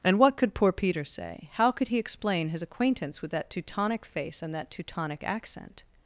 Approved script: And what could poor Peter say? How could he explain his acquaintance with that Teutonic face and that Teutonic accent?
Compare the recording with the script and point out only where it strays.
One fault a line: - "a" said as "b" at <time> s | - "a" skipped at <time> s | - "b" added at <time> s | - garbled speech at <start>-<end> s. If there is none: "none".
none